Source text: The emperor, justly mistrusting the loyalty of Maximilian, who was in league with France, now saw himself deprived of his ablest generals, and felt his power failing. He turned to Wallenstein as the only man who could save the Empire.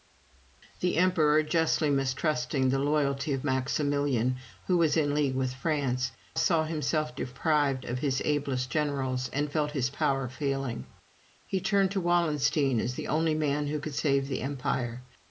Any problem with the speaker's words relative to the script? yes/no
yes